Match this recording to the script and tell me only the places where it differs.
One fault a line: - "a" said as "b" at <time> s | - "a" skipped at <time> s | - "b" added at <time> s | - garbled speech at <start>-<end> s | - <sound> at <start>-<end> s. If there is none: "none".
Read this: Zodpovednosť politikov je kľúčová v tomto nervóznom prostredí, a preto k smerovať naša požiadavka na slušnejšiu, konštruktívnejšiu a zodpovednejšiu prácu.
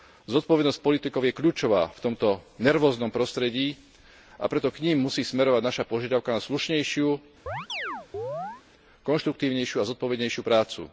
- "nim musí" added at 4.8 s
- chirp at 7.5-8.6 s